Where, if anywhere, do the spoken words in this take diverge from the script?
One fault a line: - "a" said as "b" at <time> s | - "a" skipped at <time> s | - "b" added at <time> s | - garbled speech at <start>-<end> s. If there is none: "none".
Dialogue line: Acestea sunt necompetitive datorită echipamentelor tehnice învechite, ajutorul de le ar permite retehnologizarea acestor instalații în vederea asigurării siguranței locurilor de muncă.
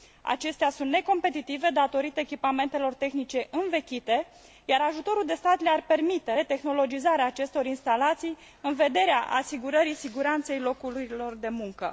- "iar" added at 4.7 s
- "stat" added at 5.3 s